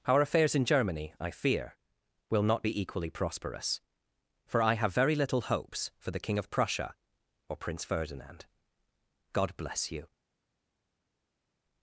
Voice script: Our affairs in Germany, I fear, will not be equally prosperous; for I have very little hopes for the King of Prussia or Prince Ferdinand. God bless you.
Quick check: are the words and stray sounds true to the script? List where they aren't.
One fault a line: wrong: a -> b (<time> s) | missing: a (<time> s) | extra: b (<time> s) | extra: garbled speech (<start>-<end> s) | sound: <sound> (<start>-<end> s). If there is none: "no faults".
no faults